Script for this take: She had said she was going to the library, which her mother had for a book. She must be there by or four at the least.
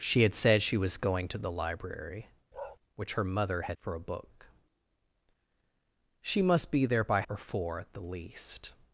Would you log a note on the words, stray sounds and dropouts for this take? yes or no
yes